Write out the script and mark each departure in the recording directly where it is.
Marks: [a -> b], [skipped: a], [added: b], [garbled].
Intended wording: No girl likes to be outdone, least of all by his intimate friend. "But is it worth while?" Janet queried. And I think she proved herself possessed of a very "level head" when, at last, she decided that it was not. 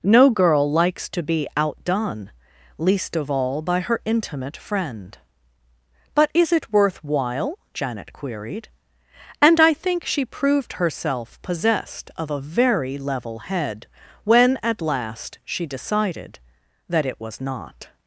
No girl likes to be outdone, least of all by [his -> her] intimate friend. "But is it worth while?" Janet queried. And I think she proved herself possessed of a very "level head" when, at last, she decided that it was not.